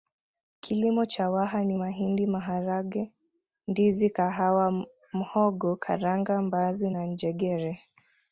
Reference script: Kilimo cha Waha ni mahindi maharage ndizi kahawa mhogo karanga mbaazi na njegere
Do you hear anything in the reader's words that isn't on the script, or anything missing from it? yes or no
no